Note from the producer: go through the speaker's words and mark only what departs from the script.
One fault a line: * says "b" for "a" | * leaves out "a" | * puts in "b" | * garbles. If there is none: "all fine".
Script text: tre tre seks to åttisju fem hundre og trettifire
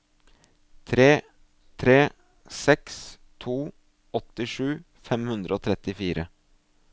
all fine